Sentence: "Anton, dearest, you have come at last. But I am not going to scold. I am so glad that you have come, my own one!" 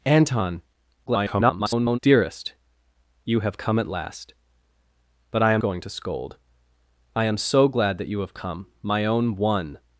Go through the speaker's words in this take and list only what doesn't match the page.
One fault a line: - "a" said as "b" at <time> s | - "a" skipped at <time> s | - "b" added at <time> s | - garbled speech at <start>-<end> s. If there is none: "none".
- garbled speech at 1.1-2.0 s
- "not" skipped at 5.6 s